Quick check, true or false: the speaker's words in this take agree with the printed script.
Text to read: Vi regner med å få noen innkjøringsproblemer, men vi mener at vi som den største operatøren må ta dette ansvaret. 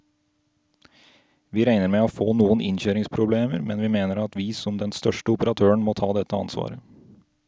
true